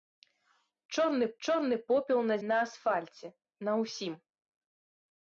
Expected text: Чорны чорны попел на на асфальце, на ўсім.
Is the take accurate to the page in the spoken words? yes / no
yes